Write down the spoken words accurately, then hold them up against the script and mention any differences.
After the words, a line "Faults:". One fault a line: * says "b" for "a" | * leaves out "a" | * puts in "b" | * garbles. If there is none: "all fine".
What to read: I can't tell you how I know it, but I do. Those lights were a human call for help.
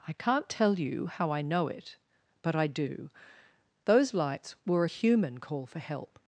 I can't tell you how I know it, but I do. Those lights were a human call for help.
Faults:
all fine